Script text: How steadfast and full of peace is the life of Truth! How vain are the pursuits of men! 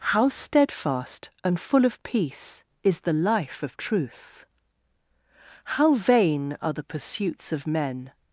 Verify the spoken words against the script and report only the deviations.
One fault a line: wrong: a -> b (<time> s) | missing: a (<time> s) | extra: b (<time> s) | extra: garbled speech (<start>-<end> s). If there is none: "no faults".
no faults